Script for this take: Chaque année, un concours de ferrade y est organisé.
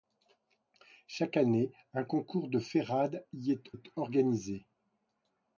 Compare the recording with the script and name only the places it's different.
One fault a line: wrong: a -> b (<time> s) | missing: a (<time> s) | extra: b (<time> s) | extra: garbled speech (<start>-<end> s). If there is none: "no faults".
extra: est (3.7 s)